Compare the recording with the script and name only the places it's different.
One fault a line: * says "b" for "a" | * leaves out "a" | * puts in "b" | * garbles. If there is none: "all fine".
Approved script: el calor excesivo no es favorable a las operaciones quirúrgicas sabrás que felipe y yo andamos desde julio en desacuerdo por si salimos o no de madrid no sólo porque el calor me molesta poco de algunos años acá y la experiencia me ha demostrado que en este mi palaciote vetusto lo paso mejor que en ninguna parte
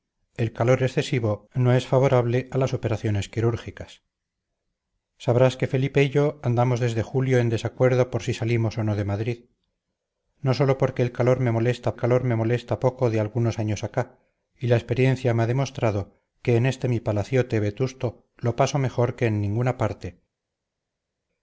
* puts in "calor me molesta"